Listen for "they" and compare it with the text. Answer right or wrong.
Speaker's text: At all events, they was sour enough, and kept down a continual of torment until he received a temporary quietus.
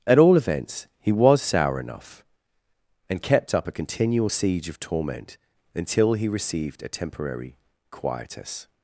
wrong